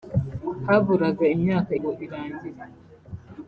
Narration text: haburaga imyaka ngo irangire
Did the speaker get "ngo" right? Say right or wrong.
right